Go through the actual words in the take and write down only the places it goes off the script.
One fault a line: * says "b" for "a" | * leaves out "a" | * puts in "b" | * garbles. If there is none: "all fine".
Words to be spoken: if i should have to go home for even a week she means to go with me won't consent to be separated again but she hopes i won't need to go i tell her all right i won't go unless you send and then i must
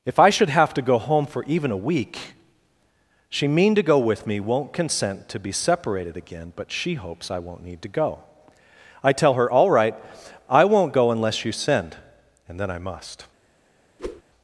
* says "mean" for "means"